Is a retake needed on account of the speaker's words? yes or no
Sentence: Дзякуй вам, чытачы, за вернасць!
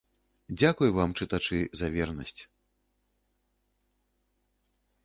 no